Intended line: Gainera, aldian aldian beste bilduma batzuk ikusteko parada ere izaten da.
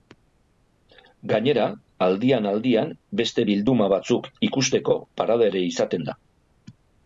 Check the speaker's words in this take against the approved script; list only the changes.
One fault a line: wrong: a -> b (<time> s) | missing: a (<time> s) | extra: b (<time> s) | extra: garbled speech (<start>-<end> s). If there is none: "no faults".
no faults